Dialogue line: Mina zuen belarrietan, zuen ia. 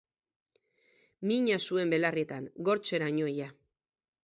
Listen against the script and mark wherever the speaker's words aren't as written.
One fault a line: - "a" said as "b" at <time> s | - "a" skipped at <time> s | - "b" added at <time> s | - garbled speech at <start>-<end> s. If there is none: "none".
- "zuen" said as "gortzeraino" at 2.7 s